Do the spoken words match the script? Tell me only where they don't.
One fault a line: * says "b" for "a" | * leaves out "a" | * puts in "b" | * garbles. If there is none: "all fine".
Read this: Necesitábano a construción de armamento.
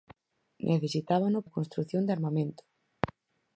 all fine